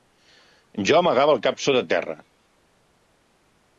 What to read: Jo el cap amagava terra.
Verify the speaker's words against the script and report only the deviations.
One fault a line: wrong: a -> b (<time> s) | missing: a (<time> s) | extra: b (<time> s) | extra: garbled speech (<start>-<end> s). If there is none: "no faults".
extra: amagava (1.0 s)
wrong: amagava -> sota (1.7 s)